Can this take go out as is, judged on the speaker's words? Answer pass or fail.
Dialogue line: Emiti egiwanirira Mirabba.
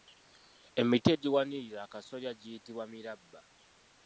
fail